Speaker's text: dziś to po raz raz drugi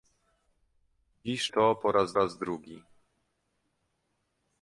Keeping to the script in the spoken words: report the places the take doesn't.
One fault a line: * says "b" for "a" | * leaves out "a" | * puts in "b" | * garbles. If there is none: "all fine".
all fine